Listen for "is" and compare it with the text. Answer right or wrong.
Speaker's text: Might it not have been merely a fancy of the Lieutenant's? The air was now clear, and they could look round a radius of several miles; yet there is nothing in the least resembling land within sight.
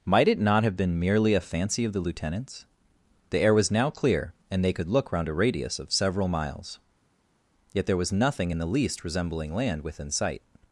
wrong